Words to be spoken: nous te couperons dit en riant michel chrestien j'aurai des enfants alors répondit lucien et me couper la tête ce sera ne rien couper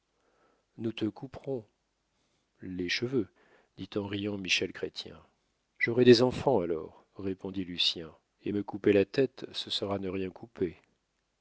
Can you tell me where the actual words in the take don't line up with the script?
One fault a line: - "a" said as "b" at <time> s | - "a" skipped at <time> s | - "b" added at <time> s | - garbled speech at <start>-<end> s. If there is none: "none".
- "les cheveux" added at 2.6 s